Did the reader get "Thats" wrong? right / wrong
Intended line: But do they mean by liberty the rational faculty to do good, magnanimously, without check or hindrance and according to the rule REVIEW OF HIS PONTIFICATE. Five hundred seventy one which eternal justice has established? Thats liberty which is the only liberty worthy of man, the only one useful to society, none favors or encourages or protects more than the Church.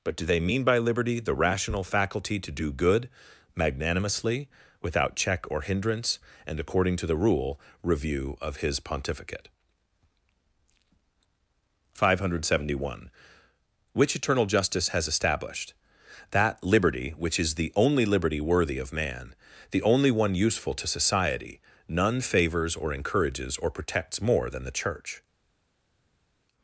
wrong